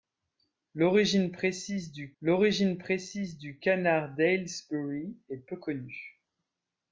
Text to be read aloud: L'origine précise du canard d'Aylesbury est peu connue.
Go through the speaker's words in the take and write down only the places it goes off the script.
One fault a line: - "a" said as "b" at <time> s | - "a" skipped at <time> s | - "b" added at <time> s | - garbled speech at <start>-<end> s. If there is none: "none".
- "l'origine précise du" added at 2.2 s